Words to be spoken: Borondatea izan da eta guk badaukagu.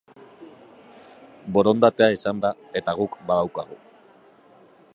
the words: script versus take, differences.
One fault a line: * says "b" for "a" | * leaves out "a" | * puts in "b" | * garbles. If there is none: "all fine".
all fine